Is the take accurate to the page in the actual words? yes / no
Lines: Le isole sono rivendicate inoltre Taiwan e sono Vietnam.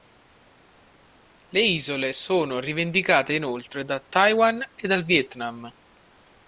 no